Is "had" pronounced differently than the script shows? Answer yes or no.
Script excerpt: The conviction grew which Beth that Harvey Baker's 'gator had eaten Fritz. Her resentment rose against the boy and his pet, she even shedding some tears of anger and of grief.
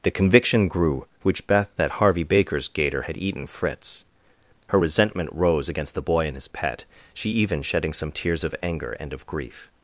no